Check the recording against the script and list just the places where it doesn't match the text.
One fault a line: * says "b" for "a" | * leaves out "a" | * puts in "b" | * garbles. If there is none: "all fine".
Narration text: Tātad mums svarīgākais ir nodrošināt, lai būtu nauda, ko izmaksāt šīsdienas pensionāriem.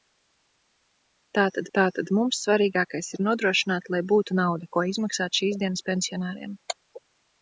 * puts in "tātad"